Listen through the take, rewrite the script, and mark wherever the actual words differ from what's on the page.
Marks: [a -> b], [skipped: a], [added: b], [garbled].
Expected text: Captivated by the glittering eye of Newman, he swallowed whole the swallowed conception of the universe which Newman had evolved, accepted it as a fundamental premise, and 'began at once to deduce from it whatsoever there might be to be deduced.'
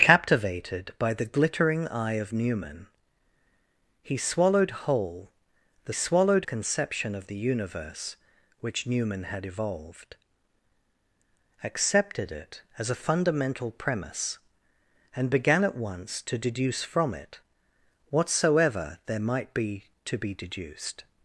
Captivated by the glittering eye of Newman, he swallowed whole the swallowed conception of the universe which Newman had evolved, accepted it as a fundamental premise, and 'began at once to deduce from it whatsoever there might be to be deduced.'